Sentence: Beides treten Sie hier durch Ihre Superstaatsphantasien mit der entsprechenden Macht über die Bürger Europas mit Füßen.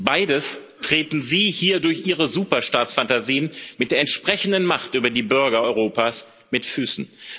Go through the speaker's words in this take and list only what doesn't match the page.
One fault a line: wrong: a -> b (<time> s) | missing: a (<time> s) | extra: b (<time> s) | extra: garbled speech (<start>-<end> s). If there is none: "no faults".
no faults